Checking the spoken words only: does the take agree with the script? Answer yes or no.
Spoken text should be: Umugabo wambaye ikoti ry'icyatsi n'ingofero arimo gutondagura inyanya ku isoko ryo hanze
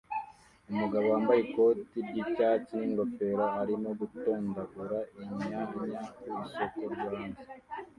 yes